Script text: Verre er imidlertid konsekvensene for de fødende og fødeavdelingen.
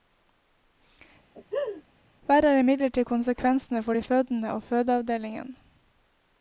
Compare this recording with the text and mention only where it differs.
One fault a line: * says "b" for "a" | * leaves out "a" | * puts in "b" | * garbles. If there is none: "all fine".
all fine